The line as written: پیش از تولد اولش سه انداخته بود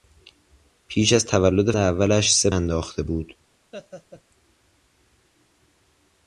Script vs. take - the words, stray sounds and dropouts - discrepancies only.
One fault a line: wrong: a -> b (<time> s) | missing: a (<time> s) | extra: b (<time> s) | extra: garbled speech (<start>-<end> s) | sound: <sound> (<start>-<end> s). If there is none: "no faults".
sound: laugh (3.7-4.2 s)